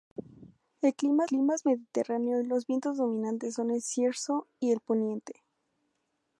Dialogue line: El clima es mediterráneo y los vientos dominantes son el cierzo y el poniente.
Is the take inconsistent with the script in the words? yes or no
yes